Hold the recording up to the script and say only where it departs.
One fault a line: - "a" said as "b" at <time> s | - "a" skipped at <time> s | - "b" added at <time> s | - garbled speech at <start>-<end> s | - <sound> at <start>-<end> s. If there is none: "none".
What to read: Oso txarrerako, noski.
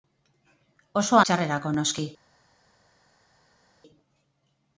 none